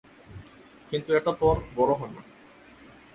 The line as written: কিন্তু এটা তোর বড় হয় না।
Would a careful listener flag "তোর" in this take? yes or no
no